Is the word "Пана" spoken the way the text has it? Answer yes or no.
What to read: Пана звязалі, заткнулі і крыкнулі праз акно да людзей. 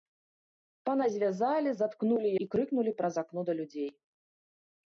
yes